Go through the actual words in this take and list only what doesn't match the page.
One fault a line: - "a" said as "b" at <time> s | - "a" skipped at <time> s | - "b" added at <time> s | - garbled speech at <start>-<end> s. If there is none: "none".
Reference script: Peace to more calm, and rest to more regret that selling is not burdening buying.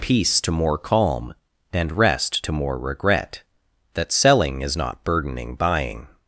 none